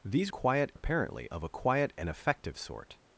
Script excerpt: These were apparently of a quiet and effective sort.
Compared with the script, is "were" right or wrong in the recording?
wrong